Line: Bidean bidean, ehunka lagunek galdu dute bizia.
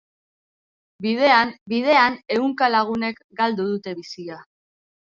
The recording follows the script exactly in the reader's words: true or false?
true